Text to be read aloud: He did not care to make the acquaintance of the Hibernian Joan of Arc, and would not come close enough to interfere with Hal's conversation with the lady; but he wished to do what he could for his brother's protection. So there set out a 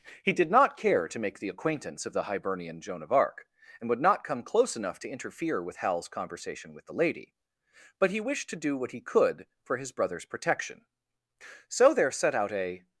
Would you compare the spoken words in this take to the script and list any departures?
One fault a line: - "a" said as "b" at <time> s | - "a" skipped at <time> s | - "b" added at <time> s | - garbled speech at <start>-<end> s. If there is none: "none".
none